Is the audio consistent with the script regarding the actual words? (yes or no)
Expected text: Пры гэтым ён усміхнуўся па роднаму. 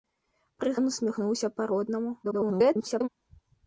no